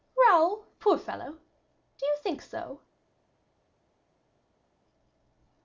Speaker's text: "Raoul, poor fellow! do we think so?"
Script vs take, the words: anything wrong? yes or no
yes